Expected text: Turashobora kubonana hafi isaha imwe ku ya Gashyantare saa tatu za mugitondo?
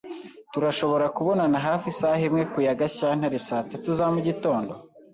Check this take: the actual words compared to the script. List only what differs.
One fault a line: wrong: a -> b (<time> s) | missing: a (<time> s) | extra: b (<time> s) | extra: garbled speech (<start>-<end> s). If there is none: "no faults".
no faults